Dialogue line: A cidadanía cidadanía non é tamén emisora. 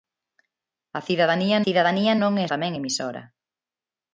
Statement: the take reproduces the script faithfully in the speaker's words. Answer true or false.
true